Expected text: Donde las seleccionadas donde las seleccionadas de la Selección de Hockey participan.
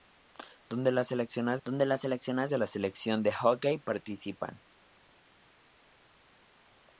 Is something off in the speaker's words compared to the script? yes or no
no